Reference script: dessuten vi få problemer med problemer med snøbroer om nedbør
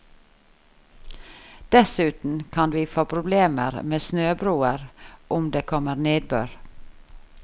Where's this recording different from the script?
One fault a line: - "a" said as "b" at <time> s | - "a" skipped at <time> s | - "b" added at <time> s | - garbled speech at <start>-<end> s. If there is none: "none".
- "kan" added at 2.5 s
- "problemer med snøbroer om" said as "snøbroer om det kommer" at 4.0 s